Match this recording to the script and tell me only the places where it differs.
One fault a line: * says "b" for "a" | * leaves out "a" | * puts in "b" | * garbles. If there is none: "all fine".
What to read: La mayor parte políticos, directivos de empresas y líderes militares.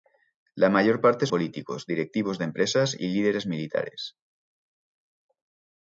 all fine